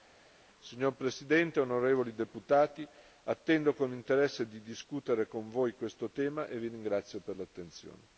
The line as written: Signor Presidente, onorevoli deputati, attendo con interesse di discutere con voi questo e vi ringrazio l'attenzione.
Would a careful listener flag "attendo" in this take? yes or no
no